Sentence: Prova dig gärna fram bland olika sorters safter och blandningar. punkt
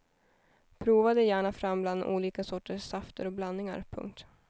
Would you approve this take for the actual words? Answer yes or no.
yes